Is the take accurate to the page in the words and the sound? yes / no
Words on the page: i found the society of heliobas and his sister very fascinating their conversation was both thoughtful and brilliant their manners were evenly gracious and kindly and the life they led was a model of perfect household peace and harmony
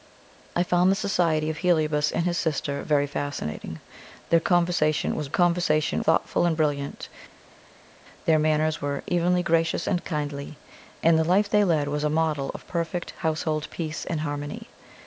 no